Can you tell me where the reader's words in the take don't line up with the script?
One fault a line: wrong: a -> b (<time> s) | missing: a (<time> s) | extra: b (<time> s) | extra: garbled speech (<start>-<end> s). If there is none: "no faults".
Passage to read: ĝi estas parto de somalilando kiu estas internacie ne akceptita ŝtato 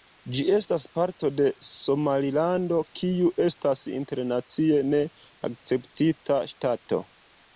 no faults